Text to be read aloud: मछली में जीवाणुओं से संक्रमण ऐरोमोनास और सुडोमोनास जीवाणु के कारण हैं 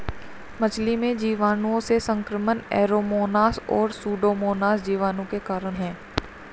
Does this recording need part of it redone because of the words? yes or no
no